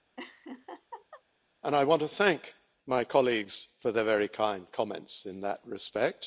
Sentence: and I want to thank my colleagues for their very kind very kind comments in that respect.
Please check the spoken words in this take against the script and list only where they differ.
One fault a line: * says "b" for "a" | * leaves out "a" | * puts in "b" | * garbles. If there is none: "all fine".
* leaves out "very kind"